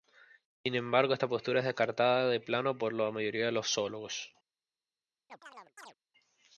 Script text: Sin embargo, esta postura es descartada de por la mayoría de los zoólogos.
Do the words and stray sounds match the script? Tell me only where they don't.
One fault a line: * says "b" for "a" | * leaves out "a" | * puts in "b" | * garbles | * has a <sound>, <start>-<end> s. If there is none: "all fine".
* puts in "plano"
* has a chirp, 5.3-5.9 s